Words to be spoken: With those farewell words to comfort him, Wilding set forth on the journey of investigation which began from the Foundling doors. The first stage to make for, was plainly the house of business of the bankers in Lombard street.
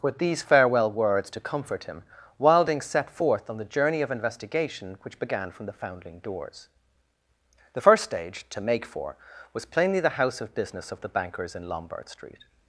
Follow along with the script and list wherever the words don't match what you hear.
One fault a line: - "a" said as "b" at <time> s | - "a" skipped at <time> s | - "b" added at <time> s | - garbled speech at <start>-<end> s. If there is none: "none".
- "those" said as "these" at 0.2 s